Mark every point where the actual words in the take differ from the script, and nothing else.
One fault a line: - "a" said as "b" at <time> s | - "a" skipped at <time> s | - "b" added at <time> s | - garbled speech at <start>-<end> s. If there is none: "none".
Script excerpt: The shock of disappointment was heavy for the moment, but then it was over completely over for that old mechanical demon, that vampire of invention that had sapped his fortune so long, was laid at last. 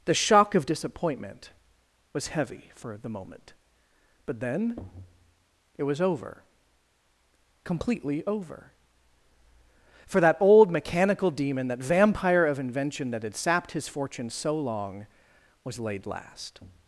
- "at" skipped at 16.1 s